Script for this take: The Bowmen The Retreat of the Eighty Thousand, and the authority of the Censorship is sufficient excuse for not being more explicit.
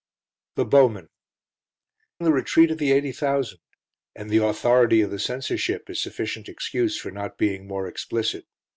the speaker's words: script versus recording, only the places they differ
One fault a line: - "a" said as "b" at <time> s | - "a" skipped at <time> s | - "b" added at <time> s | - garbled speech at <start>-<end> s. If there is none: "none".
none